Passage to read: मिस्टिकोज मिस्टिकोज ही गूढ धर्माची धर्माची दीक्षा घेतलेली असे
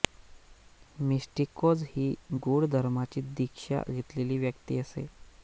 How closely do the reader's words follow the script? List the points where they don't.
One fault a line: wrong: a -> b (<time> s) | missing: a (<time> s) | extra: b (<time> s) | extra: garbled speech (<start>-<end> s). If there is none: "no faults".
missing: मिस्टिकोज (1.8 s)
missing: धर्माची (3.2 s)
extra: व्यक्ती (4.4 s)